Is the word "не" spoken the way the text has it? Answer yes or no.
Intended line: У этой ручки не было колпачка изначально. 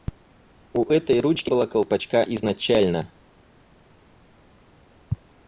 no